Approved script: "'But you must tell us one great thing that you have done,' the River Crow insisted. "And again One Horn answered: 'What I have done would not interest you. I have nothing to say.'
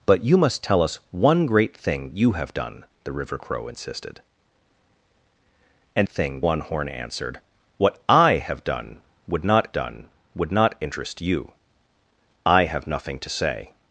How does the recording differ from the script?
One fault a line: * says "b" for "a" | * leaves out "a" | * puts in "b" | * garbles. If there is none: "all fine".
* leaves out "that"
* says "thing" for "again"
* puts in "done would not"